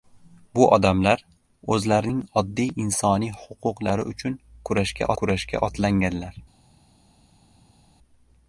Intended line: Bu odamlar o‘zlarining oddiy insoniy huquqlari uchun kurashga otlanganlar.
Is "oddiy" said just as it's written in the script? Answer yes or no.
yes